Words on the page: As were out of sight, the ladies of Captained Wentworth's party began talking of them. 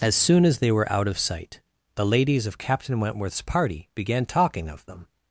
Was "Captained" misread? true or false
true